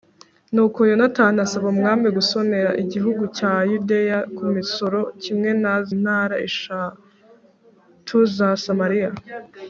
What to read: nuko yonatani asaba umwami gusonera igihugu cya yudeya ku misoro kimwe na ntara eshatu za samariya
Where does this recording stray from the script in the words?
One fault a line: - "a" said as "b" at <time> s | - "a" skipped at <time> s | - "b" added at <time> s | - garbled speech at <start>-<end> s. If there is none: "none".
none